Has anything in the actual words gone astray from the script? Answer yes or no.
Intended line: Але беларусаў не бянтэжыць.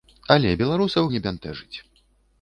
no